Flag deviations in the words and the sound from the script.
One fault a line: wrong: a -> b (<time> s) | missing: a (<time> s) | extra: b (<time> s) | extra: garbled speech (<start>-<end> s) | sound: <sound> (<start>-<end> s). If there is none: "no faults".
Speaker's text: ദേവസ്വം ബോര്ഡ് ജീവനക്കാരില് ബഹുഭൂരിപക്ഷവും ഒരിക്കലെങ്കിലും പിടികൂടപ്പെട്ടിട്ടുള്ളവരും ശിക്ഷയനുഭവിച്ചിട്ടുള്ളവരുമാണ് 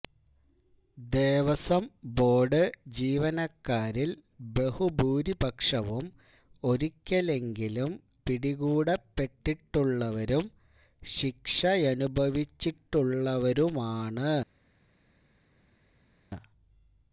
no faults